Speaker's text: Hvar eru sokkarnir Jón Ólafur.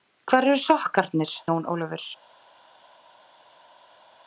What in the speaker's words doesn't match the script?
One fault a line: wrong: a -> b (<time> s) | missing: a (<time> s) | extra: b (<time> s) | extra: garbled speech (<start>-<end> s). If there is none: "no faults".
no faults